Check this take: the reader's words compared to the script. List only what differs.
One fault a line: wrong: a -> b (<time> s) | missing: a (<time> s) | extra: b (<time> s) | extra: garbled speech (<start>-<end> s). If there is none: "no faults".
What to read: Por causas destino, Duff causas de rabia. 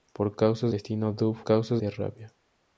no faults